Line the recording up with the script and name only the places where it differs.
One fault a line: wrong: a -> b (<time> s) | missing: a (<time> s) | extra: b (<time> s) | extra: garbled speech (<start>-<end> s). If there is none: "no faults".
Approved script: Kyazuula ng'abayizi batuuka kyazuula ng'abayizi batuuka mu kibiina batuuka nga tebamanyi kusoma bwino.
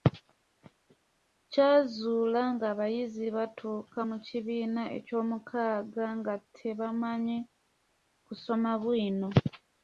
missing: kyazuula ng'abayizi batuuka (4.0 s)
wrong: batuuka -> ekyomukaaga (5.0 s)